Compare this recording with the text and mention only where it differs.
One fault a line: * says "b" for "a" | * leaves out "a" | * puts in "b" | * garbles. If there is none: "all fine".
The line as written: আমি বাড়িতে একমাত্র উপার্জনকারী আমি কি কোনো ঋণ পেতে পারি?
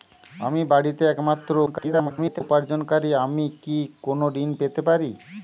* garbles